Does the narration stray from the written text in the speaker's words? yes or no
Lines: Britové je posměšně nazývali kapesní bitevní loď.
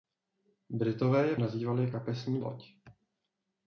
yes